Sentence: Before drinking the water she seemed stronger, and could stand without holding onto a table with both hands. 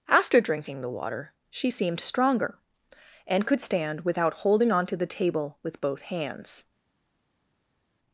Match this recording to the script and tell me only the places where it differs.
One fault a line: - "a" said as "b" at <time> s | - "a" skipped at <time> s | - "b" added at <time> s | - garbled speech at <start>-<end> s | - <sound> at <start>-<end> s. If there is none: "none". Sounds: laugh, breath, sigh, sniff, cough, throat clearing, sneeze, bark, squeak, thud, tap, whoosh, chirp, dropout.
- "Before" said as "After" at 0.1 s
- "a" said as "the" at 4.9 s